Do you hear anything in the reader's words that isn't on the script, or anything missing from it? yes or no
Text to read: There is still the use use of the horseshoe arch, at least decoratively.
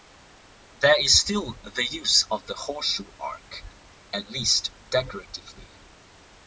yes